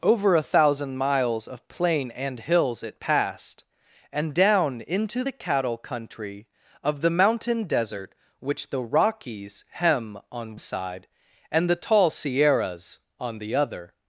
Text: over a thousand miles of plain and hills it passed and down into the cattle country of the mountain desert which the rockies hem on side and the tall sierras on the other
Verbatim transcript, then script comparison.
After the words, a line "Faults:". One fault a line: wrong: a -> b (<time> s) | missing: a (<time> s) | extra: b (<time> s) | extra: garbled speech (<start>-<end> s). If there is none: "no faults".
over a thousand miles of plain and hills it passed and down into the cattle country of the mountain desert which the rockies hem on side and the tall sierras on the other
Faults:
no faults